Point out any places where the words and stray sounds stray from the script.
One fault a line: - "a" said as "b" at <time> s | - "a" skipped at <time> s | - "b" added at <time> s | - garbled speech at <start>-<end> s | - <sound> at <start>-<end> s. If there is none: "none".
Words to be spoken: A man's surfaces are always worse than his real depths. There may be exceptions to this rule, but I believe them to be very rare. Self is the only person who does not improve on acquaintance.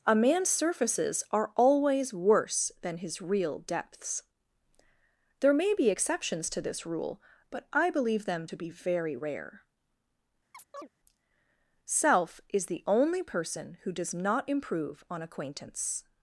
- chirp at 10.5-10.9 s